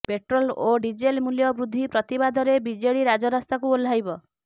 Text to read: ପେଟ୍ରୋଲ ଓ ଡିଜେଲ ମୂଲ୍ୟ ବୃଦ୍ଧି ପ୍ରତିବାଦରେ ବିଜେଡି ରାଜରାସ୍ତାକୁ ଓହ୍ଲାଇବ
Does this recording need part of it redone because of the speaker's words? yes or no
no